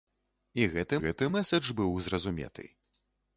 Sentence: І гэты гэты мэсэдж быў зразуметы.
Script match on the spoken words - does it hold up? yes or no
yes